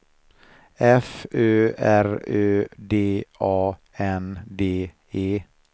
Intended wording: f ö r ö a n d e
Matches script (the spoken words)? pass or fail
fail